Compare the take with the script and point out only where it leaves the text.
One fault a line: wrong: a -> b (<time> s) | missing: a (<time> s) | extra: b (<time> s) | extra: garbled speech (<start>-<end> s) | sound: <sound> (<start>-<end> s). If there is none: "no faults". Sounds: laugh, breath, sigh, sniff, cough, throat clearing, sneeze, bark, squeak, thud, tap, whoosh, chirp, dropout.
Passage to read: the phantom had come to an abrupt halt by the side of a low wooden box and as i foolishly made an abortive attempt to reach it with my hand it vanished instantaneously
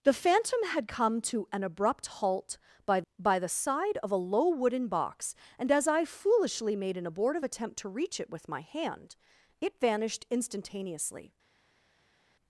extra: by (3.2 s)